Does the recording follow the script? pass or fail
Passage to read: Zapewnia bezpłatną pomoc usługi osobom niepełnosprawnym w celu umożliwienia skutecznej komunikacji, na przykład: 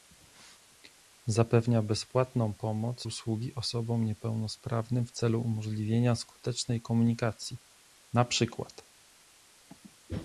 pass